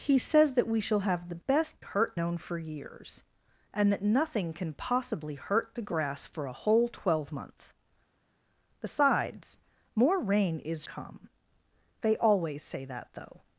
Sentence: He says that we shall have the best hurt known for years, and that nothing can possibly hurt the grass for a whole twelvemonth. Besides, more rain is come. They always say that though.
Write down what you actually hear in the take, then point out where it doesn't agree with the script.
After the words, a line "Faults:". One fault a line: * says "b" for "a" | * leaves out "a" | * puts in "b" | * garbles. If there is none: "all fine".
He says that we shall have the best hurt known for years, and that nothing can possibly hurt the grass for a whole twelvemonth. Besides, more rain is come. They always say that though.
Faults:
all fine